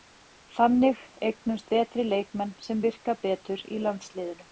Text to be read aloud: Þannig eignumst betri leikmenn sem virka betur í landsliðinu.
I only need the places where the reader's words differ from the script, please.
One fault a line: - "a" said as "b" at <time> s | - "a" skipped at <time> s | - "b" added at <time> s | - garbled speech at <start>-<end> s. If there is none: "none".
none